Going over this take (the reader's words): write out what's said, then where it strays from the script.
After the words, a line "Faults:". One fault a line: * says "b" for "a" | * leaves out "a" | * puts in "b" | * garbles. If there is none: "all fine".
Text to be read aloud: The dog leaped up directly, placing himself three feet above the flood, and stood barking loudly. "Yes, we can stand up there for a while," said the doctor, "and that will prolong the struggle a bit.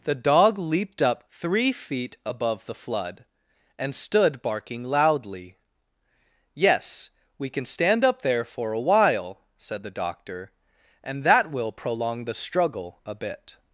The dog leaped up three feet above the flood, and stood barking loudly. "Yes, we can stand up there for a while," said the doctor, "and that will prolong the struggle a bit.
Faults:
* leaves out "directly placing himself"